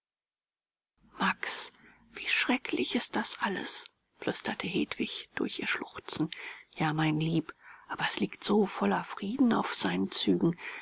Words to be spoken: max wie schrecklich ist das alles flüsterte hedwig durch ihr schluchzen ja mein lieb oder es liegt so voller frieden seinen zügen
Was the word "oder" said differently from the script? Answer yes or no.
yes